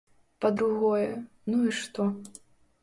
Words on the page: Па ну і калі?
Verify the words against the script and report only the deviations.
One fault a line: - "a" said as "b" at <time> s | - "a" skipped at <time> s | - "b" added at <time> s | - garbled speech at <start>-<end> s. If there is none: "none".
- "другое" added at 0.6 s
- "калі" said as "што" at 1.8 s